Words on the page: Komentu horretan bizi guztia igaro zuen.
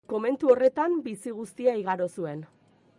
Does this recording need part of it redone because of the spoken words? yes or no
no